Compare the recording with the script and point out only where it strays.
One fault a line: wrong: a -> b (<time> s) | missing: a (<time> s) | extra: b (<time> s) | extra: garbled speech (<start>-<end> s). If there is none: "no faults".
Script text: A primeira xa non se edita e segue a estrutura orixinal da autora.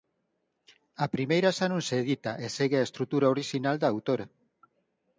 no faults